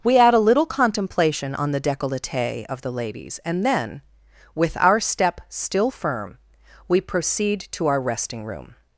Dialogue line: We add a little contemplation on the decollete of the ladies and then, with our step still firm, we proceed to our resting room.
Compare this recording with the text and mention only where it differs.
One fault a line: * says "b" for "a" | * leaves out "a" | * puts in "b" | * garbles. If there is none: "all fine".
all fine